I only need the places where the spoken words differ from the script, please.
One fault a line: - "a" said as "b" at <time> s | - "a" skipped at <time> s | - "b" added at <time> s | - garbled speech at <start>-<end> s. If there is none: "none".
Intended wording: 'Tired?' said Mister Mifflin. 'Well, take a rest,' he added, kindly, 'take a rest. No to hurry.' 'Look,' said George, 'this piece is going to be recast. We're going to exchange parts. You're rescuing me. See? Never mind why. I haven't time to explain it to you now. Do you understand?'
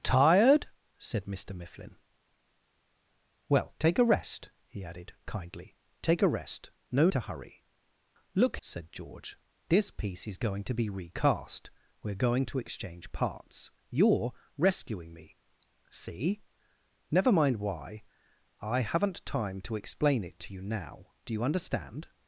none